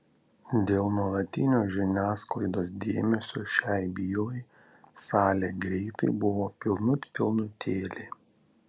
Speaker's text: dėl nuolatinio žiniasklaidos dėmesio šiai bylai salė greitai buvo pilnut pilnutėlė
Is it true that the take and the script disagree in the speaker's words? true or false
false